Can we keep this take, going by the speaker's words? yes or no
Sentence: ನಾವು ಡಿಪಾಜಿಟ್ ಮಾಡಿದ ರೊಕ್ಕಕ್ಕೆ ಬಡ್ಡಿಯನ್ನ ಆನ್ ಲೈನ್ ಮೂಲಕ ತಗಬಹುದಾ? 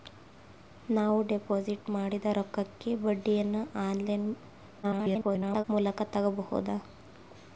no